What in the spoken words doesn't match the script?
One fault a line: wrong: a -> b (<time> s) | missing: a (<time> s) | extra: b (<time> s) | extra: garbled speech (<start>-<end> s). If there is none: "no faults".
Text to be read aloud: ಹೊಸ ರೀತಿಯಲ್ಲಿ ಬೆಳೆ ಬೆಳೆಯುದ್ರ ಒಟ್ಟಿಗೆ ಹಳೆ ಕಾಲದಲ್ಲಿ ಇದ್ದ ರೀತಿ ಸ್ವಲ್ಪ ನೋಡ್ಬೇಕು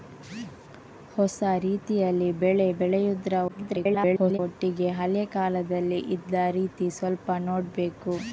extra: garbled speech (3.5-4.4 s)